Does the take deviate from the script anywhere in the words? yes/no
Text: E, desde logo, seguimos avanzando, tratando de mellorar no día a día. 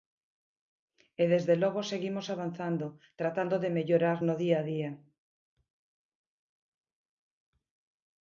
no